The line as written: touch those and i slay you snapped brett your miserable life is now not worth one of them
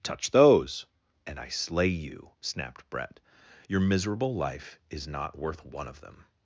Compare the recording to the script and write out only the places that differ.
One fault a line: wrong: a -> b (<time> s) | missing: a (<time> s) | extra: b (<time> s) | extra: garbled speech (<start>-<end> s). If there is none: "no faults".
missing: now (5.1 s)